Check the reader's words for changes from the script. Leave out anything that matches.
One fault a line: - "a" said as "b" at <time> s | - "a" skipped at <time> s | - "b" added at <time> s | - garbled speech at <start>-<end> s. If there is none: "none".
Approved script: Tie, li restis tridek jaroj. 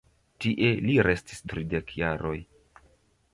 none